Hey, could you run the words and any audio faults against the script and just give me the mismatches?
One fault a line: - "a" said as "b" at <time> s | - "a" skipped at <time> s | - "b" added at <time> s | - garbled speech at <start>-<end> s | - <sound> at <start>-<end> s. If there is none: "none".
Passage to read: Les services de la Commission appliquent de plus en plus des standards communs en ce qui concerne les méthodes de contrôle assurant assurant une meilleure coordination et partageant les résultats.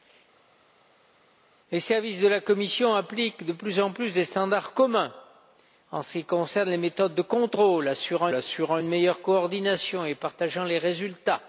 none